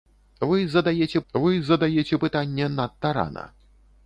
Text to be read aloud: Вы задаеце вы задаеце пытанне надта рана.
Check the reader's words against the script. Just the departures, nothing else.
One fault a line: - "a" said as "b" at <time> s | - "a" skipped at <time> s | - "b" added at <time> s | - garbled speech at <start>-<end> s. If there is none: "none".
none